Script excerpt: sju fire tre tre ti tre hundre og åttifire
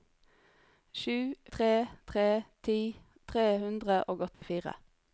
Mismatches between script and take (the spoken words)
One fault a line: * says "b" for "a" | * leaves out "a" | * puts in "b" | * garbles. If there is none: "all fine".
* leaves out "fire"